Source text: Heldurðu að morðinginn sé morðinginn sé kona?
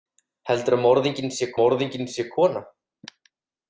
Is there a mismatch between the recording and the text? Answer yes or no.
no